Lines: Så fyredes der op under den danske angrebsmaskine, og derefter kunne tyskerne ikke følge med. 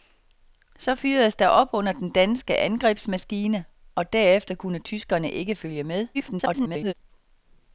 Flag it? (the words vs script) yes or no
yes